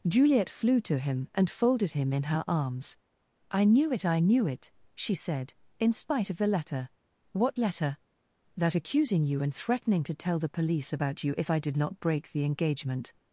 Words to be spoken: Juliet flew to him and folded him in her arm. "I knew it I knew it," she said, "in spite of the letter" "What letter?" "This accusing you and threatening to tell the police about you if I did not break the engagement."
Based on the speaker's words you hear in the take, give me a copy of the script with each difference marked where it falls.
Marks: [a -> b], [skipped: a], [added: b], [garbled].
Juliet flew to him and folded him in her [arm. -> arms] "I knew it I knew it," she said, "in spite of the letter" "What letter?" ["This -> That] accusing you and threatening to tell the police about you if I did not break the engagement."